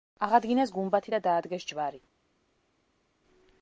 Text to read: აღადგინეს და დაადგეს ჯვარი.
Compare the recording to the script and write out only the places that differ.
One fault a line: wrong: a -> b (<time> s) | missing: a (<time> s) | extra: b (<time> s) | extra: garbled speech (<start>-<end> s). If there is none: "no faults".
extra: გუმბათი (0.8 s)